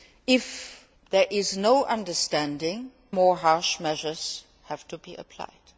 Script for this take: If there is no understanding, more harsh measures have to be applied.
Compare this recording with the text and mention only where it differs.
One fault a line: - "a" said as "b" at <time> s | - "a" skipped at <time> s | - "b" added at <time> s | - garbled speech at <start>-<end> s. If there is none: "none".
none